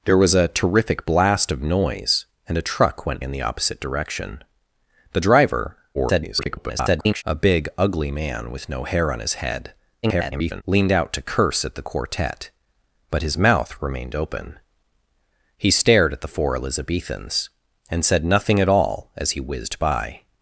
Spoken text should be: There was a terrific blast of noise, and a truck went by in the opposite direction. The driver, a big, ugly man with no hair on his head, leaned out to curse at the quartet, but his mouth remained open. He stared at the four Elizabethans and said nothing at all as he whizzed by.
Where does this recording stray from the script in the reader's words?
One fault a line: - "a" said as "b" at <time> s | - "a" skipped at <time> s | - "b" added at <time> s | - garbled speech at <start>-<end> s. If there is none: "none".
- "by" skipped at 3.2 s
- garbled speech at 5.9-7.2 s
- garbled speech at 10.0-10.6 s